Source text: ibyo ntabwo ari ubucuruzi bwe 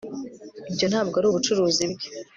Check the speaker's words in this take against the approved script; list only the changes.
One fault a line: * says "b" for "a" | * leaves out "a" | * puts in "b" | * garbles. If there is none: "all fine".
all fine